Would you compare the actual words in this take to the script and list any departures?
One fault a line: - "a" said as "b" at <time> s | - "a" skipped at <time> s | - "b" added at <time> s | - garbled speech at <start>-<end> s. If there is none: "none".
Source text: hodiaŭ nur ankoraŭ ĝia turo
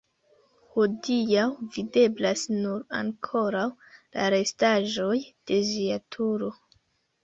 - "videblas" added at 1.8 s
- "la restaĵoj de" added at 4.0 s